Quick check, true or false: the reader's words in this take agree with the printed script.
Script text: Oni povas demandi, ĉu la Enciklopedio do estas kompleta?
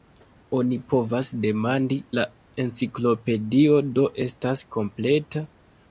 false